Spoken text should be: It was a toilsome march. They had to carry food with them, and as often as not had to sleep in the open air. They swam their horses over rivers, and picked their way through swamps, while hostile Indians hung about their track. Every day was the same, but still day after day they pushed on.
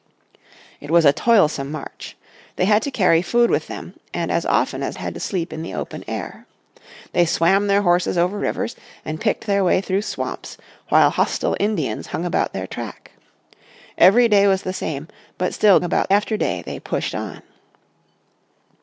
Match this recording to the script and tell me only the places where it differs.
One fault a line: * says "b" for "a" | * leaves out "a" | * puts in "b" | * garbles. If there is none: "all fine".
* leaves out "not"
* says "about" for "day"